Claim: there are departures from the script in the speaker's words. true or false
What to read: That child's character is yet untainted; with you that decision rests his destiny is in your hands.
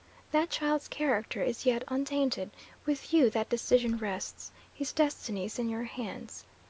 false